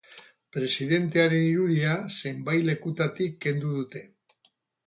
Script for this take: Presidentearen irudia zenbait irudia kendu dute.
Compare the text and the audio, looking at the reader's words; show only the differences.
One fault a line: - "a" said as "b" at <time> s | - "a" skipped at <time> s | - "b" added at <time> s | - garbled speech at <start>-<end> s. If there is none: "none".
- "irudia" said as "lekutatik" at 2.7 s